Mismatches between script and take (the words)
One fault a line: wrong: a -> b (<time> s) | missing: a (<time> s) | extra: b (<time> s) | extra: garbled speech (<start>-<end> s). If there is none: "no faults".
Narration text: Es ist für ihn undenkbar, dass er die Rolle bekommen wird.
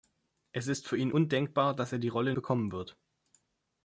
no faults